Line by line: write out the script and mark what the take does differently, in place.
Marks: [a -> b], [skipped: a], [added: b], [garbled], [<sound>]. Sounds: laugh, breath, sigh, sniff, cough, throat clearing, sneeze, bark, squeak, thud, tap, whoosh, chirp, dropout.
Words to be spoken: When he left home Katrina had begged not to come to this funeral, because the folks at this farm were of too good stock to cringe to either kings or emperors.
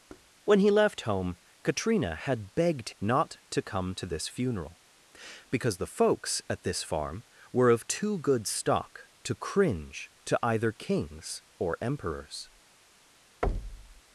[thud] When he left home Katrina had begged not to come to this funeral, because the folks at this farm were of too good stock to cringe to either kings or emperors. [thud]